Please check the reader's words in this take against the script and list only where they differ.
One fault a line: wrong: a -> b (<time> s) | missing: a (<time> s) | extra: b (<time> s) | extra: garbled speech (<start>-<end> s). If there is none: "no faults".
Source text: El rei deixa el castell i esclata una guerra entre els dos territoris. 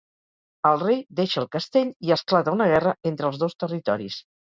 no faults